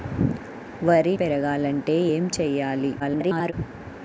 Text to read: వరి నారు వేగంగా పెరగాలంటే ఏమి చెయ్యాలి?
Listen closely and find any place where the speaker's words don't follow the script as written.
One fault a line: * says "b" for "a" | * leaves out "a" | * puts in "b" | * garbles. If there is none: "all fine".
* leaves out "నారు వేగంగా"
* garbles